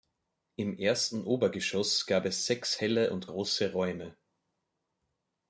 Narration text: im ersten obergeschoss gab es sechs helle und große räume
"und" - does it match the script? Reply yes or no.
yes